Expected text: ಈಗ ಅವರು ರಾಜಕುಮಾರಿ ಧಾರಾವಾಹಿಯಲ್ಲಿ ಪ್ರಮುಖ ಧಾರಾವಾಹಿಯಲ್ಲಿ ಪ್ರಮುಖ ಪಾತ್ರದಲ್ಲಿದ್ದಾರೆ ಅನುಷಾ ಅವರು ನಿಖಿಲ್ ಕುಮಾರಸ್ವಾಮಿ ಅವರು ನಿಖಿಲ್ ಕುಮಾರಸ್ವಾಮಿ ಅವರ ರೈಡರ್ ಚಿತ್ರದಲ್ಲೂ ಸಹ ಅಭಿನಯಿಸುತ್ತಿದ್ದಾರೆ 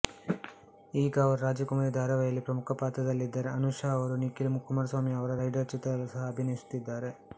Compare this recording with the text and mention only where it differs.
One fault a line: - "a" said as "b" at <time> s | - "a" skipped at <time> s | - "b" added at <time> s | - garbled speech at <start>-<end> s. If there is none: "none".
- "ಧಾರಾವಾಹಿಯಲ್ಲಿ ಪ್ರಮುಖ" skipped at 2.8 s
- "ಅವರು ನಿಖಿಲ್ ಕುಮಾರಸ್ವಾಮಿ" skipped at 5.1 s